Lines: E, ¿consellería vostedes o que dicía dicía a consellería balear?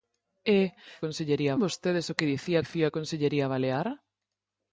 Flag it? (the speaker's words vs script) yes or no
no